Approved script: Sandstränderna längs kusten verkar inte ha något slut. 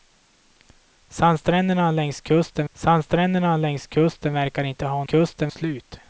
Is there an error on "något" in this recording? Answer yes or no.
yes